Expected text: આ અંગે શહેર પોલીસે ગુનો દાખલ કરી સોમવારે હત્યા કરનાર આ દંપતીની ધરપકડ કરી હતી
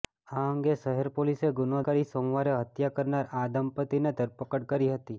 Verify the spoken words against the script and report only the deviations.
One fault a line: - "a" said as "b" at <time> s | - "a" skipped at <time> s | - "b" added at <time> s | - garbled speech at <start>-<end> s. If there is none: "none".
- "દાખલ" skipped at 1.8 s